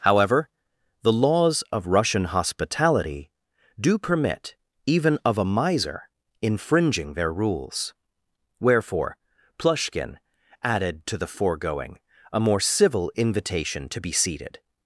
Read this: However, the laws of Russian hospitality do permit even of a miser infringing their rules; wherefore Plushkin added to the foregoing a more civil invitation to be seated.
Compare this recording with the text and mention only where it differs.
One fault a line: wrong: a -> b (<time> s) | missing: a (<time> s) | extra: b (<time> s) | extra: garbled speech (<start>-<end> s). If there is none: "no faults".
no faults